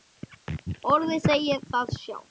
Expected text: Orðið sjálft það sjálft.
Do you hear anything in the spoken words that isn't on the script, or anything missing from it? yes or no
yes